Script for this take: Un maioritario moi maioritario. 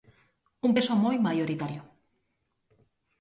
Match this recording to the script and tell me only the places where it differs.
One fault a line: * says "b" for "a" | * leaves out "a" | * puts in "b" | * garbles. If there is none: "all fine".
* says "peso" for "maioritario"